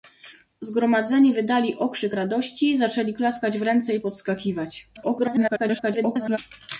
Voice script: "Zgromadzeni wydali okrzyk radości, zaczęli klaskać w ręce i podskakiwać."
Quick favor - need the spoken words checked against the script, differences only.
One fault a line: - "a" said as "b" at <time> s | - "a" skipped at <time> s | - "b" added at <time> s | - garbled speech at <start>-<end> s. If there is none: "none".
- garbled speech at 5.0-6.4 s